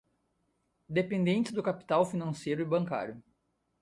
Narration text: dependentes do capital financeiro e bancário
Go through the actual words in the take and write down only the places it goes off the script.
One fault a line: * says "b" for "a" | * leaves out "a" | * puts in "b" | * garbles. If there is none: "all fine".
all fine